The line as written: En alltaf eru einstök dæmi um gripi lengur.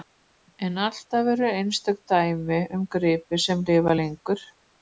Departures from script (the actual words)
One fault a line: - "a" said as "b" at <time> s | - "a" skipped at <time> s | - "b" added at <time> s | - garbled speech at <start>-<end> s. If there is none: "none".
- "sem lifa" added at 3.5 s